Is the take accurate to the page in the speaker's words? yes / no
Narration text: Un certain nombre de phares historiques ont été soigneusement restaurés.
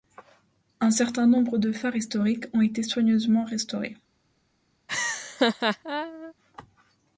yes